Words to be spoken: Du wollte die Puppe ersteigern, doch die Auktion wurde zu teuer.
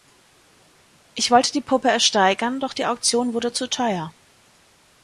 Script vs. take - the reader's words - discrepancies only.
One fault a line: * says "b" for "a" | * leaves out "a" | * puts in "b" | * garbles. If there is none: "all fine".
* says "Ich" for "Du"